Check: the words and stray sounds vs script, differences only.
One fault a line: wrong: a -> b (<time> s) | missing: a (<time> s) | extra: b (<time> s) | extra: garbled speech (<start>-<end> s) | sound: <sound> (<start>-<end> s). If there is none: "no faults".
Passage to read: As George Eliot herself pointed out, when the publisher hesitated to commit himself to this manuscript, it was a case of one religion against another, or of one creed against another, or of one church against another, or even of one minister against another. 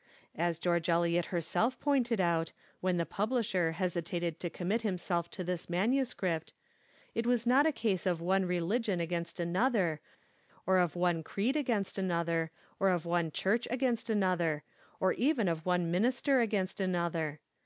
extra: not (7.5 s)